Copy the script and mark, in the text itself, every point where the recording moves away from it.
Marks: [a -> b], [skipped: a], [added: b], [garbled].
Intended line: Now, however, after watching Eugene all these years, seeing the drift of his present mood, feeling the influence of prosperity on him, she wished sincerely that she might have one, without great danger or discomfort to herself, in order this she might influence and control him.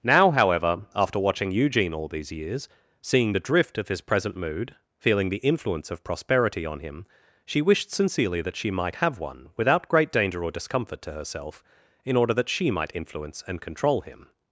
Now, however, after watching Eugene all these years, seeing the drift of his present mood, feeling the influence of prosperity on him, she wished sincerely that she might have one, without great danger or discomfort to herself, in order [this -> that] she might influence and control him.